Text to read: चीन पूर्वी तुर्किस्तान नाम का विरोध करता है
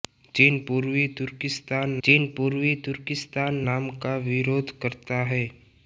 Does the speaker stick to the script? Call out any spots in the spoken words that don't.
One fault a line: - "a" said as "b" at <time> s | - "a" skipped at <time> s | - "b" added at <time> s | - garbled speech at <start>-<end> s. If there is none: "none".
- "चीन पूर्वी तुर्किस्तान" added at 2.0 s